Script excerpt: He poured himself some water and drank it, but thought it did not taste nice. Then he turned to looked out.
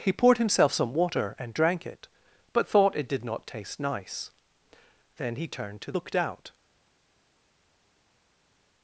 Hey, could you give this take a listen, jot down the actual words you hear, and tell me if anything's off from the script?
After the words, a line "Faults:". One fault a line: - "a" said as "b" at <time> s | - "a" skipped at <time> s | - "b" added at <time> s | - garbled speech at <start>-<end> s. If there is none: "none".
He poured himself some water and drank it, but thought it did not taste nice. Then he turned to looked out.
Faults:
none